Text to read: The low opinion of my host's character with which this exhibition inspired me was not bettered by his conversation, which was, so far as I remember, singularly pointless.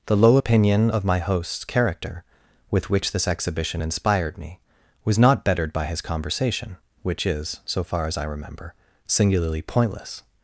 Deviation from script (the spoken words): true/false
true